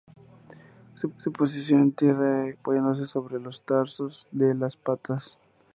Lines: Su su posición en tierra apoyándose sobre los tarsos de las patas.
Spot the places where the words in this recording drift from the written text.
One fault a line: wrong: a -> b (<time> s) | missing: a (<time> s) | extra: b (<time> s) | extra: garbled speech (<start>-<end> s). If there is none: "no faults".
no faults